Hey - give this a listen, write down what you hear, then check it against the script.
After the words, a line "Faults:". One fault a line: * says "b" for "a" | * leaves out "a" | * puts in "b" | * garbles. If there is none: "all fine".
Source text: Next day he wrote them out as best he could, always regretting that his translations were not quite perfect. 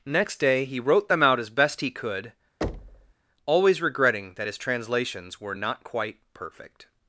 Next day he wrote them out as best he could, always regretting that his translations were not quite perfect.
Faults:
all fine